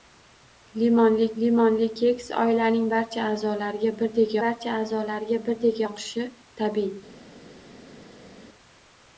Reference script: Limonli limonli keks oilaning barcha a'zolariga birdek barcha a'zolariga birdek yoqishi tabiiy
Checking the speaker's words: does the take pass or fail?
pass